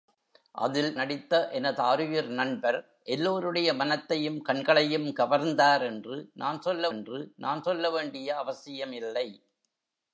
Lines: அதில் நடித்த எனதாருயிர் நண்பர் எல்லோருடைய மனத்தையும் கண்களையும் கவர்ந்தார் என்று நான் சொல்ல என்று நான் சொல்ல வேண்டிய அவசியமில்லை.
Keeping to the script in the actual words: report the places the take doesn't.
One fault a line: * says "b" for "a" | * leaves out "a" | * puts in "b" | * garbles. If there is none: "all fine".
all fine